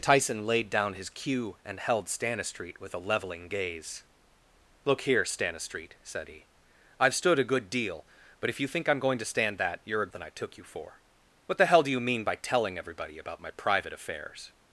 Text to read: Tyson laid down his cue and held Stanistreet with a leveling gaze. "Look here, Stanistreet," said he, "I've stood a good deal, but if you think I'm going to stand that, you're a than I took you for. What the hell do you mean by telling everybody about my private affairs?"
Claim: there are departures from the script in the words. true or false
false